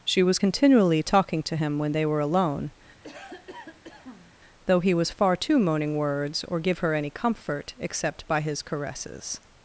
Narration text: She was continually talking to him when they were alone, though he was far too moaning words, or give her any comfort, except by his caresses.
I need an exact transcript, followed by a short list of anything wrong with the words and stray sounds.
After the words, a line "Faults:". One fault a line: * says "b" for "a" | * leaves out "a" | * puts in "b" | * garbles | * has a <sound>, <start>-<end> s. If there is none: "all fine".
She was continually talking to him when they were alone, though he was far too moaning words, or give her any comfort, except by his caresses.
Faults:
* has a cough, 3.0-4.3 s